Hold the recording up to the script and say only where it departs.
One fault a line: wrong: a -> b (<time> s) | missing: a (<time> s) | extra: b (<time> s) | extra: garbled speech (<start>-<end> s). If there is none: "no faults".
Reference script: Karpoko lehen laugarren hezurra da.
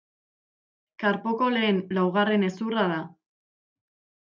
no faults